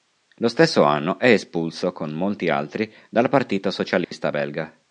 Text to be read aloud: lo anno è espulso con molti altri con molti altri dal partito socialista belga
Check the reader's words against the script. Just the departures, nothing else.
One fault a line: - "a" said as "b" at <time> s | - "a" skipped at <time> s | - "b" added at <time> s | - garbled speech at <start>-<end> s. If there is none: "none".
- "stesso" added at 0.5 s
- "con molti altri" skipped at 2.9 s